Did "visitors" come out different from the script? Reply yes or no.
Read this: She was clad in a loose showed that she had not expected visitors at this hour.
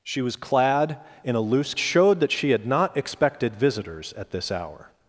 no